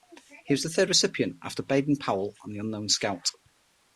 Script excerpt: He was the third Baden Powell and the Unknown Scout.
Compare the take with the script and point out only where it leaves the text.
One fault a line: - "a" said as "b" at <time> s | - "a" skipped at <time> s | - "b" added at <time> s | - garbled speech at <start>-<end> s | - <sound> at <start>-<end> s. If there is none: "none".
- "recipient after" added at 0.9 s